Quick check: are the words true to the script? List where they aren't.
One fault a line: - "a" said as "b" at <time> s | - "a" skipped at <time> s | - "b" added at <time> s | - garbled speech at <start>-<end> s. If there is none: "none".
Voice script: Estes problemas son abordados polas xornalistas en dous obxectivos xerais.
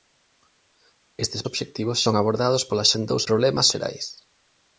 - "problemas" said as "obxectivos" at 1.5 s
- "xornalistas" skipped at 2.9 s
- "obxectivos" said as "problemas" at 3.3 s